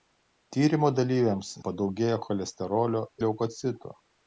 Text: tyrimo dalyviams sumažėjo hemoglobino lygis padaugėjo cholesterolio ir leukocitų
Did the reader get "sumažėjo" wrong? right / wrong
wrong